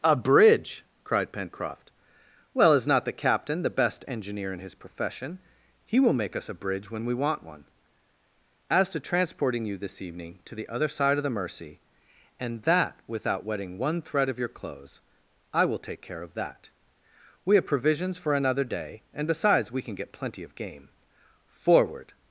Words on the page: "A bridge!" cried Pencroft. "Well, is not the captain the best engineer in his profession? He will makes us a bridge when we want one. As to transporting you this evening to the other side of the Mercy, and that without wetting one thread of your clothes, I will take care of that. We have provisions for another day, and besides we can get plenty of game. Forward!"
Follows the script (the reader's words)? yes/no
no